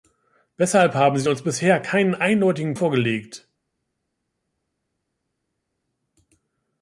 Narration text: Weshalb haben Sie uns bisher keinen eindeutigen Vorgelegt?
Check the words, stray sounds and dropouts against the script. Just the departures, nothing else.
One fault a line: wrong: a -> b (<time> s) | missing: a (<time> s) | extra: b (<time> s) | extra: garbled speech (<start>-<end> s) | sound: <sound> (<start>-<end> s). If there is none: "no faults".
no faults